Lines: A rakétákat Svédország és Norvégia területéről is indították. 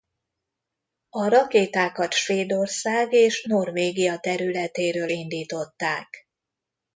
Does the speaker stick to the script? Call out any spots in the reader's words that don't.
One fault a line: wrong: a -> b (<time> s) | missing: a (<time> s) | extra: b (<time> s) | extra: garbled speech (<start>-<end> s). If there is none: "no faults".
missing: is (5.1 s)